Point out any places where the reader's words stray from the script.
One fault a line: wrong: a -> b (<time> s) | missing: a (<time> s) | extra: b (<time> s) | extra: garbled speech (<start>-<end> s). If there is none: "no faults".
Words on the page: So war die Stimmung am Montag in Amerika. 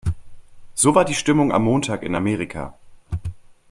no faults